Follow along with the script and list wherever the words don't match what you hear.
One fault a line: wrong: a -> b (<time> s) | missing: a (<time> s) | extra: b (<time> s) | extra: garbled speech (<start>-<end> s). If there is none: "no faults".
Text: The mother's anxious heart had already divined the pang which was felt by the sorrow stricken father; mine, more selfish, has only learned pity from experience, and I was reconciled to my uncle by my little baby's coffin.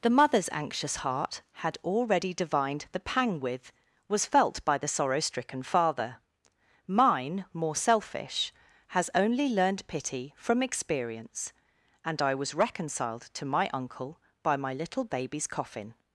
wrong: which -> with (3.4 s)